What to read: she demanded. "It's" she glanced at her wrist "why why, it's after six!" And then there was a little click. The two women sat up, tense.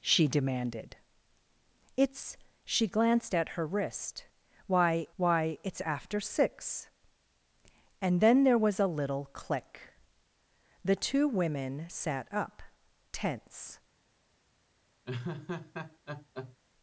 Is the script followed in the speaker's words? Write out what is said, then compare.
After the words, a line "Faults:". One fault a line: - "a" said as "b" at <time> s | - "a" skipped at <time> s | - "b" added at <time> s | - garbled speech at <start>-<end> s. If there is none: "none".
she demanded. "It's" she glanced at her wrist "why why, it's after six!" And then there was a little click. The two women sat up, tense.
Faults:
none